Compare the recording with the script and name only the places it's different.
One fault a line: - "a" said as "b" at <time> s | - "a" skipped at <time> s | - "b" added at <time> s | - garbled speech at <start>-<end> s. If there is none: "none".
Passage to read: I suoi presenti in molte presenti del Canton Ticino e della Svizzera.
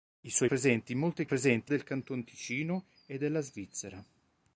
none